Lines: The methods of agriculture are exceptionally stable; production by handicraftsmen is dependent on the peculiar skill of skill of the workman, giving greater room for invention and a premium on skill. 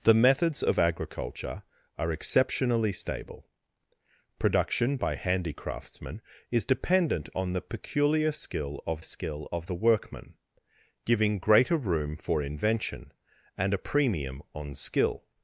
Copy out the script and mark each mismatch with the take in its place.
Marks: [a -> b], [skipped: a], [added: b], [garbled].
The methods of agriculture are exceptionally stable; production by handicraftsmen is dependent on the peculiar skill of skill of the workman, giving greater room for invention and a premium on skill.